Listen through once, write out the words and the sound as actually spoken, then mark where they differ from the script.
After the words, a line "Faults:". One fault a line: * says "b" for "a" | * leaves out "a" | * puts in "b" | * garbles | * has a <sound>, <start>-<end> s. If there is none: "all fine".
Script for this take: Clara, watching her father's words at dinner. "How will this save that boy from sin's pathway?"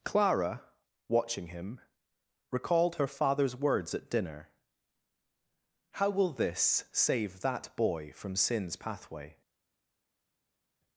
Clara, watching him, recalled her father's words at dinner. "How will this save that boy from sin's pathway?"
Faults:
* puts in "him recalled"